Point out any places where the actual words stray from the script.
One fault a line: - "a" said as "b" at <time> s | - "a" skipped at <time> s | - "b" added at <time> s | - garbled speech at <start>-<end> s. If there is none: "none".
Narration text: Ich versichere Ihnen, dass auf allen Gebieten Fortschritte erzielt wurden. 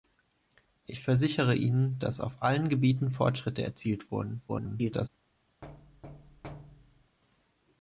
- garbled speech at 4.5-5.1 s